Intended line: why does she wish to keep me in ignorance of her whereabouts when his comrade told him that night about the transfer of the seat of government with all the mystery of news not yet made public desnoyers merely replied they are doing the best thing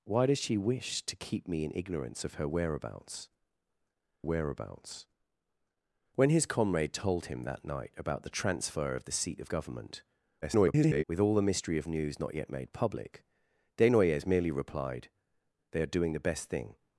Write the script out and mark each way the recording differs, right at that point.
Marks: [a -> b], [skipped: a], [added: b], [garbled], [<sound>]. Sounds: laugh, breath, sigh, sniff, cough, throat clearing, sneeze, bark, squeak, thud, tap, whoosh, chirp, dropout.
why does she wish to keep me in ignorance of her whereabouts [added: whereabouts] when his comrade told him that night about the transfer of the seat of government [garbled] with all the mystery of news not yet made public desnoyers merely replied they are doing the best thing